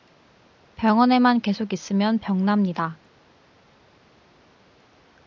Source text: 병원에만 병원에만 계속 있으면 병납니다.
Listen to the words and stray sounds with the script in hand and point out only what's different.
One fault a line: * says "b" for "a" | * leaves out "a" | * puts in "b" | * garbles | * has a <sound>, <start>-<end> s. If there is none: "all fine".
* leaves out "병원에만"